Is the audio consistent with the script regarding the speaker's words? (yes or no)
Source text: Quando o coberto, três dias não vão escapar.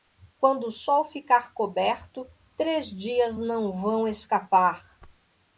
no